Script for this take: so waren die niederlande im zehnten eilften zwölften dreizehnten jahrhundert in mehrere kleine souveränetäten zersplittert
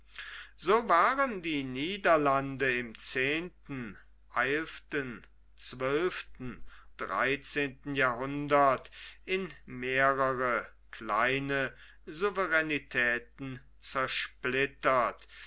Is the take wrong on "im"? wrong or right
right